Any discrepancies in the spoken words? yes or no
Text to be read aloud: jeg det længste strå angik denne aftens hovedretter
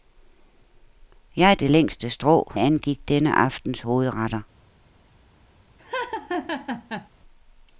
no